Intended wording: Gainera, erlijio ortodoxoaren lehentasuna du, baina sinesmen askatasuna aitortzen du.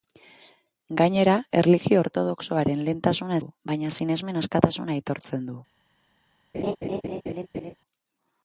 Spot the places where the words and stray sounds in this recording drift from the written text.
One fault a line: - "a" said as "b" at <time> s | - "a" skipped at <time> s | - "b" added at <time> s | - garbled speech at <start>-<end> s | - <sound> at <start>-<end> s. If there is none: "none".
- laugh at 6.5-7.7 s